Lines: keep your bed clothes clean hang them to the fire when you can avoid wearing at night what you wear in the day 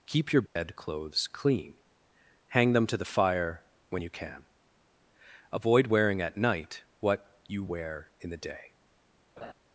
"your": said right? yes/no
yes